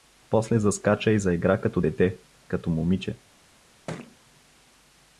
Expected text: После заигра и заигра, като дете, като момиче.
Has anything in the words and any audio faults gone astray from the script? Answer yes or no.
yes